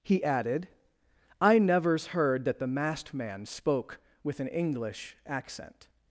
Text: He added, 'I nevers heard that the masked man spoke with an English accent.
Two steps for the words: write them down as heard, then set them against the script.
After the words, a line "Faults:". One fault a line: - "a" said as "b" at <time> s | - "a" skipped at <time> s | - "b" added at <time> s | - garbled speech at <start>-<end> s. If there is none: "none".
He added, 'I nevers heard that the masked man spoke with an English accent.
Faults:
none